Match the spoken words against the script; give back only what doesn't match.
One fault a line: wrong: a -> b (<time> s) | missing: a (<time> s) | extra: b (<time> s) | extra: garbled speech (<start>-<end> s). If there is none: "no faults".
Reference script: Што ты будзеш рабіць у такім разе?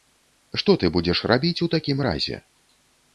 no faults